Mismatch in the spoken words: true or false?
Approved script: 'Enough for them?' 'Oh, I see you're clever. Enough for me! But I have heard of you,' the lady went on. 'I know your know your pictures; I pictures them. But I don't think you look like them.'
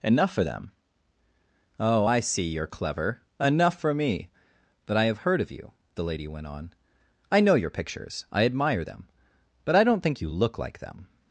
true